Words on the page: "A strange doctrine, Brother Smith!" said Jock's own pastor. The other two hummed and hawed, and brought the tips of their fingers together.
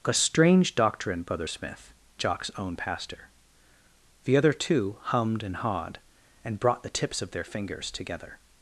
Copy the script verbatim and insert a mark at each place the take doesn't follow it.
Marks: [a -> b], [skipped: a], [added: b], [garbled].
"A strange doctrine, Brother Smith!" [skipped: said] Jock's own pastor. The other two hummed and hawed, and brought the tips of their fingers together.